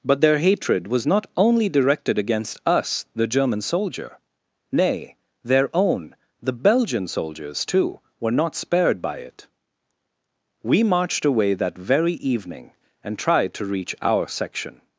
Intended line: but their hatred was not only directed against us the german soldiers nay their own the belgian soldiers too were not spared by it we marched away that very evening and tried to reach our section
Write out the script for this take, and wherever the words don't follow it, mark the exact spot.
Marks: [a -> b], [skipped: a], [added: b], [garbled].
but their hatred was not only directed against us the german [soldiers -> soldier] nay their own the belgian soldiers too were not spared by it we marched away that very evening and tried to reach our section